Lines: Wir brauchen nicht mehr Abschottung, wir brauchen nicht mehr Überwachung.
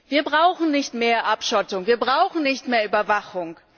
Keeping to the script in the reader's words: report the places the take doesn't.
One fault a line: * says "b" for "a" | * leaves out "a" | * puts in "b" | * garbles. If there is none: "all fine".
all fine